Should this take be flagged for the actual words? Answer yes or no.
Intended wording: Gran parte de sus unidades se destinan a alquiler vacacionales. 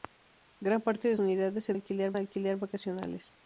yes